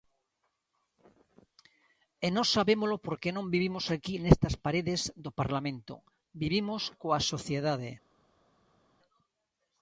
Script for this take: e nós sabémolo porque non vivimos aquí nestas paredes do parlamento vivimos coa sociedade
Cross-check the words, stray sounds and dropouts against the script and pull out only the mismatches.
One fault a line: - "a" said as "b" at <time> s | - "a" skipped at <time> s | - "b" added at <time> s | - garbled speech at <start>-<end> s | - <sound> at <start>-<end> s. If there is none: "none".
none